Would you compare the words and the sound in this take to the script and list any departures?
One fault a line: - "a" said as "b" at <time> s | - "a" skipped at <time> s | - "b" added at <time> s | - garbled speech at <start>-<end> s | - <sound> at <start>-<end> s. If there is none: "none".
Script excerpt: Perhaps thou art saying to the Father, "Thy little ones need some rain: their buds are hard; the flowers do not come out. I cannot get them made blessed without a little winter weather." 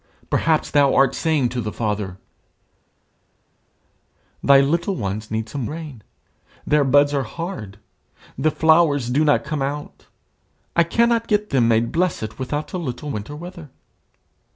none